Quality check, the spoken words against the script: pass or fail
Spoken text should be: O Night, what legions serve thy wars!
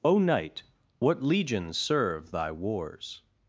pass